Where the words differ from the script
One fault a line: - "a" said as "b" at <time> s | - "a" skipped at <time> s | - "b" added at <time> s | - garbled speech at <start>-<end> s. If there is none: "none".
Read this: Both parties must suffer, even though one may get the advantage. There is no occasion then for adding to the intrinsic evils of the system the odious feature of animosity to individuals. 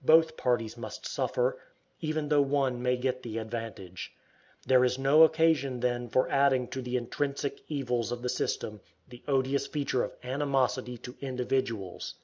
none